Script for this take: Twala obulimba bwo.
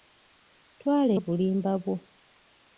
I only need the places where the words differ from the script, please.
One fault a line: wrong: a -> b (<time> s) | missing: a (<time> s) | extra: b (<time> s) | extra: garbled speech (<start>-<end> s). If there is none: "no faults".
no faults